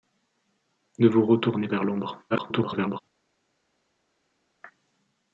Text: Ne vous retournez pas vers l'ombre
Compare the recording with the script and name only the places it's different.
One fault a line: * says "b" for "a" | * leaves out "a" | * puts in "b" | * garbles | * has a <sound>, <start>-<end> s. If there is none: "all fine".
* leaves out "pas"
* garbles